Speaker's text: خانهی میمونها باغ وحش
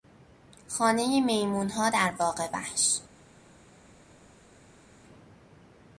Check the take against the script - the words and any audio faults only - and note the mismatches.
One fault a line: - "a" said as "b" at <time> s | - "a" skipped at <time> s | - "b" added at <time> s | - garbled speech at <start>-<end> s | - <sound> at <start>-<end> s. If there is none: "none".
- "در" added at 1.9 s